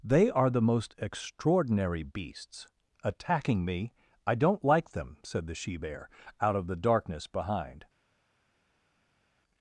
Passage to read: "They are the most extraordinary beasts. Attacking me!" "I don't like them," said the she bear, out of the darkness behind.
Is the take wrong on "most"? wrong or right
right